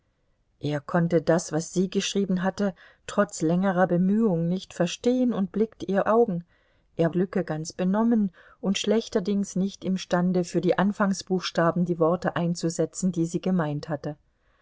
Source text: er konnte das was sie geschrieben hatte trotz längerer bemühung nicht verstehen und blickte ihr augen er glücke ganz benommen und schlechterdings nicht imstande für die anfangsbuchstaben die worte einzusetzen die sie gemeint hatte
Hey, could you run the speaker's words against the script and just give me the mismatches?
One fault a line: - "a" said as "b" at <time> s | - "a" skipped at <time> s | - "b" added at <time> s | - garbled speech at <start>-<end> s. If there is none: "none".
none